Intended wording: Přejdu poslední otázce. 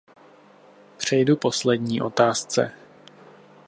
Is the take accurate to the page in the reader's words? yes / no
yes